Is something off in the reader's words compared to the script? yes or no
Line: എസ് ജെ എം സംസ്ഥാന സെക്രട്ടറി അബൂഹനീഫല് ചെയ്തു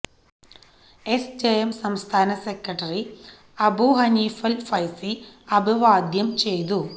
yes